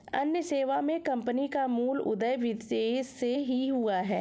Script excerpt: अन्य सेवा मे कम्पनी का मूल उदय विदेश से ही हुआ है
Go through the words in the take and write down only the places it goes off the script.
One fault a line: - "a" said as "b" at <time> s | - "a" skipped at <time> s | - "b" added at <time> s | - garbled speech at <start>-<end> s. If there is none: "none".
none